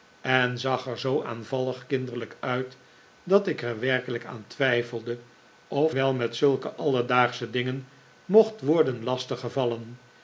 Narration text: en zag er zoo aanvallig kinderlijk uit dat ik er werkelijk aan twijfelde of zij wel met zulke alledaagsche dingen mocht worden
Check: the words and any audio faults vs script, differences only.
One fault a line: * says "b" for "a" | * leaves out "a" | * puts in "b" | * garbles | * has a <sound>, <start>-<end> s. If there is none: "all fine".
* leaves out "zij"